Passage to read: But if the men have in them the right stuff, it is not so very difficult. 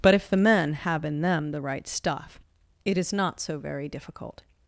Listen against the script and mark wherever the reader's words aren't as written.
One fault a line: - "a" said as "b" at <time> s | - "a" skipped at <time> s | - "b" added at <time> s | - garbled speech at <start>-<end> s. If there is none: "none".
none